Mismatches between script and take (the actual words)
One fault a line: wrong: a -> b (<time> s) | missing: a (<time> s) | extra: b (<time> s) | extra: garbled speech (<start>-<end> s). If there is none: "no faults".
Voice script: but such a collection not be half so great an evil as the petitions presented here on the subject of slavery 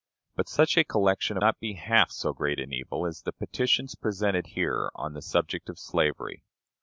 no faults